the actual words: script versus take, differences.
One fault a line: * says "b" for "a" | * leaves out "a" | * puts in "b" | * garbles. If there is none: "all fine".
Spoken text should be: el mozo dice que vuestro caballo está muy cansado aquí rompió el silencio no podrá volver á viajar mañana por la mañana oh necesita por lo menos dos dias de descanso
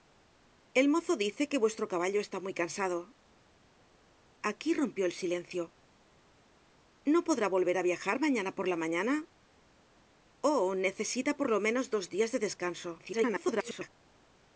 * garbles